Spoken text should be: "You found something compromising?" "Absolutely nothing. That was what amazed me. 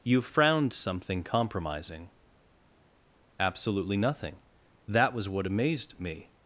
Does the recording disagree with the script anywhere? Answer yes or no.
yes